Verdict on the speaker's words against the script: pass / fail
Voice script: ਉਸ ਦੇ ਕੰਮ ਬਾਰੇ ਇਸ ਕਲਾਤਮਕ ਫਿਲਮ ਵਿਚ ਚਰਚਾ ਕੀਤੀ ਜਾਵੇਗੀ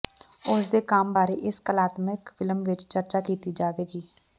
pass